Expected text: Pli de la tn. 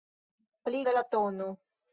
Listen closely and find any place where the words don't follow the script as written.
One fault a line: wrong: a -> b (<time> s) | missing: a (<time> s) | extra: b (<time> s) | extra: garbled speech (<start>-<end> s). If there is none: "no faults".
no faults